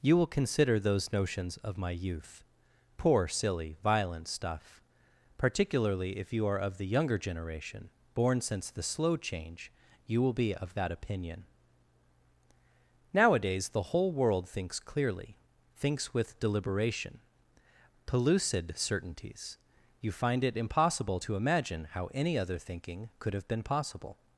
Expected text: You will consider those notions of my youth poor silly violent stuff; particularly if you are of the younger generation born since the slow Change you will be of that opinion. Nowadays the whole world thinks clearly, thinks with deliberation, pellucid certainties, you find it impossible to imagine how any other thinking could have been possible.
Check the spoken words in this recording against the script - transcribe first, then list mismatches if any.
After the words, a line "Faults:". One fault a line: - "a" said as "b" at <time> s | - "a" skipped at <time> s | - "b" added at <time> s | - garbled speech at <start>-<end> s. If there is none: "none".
You will consider those notions of my youth poor silly violent stuff; particularly if you are of the younger generation born since the slow Change you will be of that opinion. Nowadays the whole world thinks clearly, thinks with deliberation, pellucid certainties, you find it impossible to imagine how any other thinking could have been possible.
Faults:
none